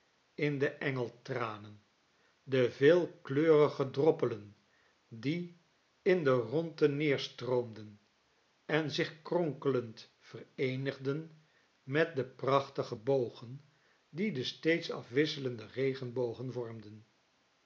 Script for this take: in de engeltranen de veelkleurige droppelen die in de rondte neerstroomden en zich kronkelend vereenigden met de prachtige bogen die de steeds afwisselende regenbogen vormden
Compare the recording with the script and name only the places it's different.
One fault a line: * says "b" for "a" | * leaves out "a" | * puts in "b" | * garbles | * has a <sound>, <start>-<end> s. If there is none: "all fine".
all fine